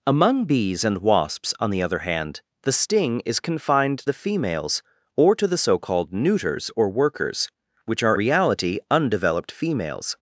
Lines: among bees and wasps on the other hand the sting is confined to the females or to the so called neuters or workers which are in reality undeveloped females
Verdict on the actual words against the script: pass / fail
fail